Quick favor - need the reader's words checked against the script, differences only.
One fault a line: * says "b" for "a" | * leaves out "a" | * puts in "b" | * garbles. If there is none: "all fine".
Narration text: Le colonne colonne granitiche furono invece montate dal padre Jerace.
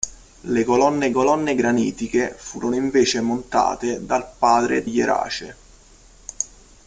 all fine